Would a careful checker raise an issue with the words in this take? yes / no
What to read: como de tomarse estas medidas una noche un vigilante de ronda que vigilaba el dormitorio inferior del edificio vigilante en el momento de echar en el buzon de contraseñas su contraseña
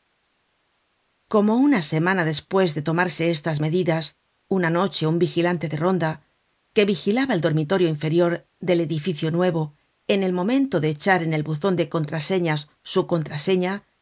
yes